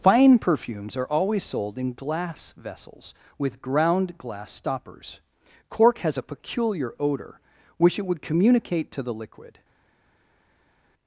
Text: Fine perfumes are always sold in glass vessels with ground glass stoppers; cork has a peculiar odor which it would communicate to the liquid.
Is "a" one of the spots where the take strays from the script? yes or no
no